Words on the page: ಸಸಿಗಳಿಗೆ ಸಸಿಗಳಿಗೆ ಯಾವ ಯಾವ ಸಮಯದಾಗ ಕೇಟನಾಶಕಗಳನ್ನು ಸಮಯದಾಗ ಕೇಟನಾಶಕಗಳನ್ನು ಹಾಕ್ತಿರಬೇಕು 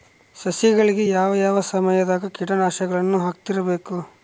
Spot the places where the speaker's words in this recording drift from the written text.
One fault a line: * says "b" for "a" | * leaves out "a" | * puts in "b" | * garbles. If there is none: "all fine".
* leaves out "ಸಸಿಗಳಿಗೆ"
* leaves out "ಸಮಯದಾಗ ಕೇಟನಾಶಕಗಳನ್ನು"